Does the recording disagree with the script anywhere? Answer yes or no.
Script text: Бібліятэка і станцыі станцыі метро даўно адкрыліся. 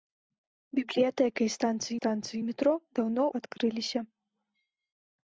no